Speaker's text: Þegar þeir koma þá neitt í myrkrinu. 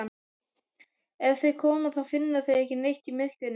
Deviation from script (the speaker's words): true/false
true